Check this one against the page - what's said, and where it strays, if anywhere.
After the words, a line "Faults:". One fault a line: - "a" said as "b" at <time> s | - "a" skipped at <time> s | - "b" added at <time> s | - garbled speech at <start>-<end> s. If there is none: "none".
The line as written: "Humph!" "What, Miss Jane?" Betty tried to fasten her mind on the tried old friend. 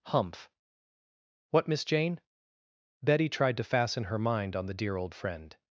"Humph!" "What, Miss Jane?" Betty tried to fasten her mind on the dear old friend.
Faults:
- "tried" said as "dear" at 4.7 s